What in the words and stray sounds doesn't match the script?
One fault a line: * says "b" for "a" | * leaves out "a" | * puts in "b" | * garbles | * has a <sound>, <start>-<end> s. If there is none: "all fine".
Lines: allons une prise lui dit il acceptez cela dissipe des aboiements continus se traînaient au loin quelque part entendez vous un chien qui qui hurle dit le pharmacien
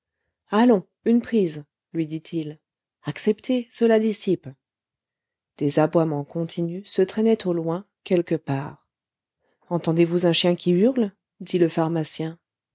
* leaves out "qui"